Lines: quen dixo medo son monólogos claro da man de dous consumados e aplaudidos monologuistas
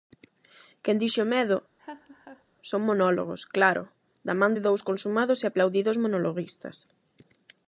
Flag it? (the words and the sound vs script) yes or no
yes